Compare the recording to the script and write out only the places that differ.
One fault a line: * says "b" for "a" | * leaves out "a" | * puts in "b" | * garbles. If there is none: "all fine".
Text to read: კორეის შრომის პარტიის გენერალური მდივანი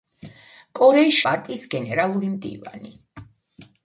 * leaves out "შრომის"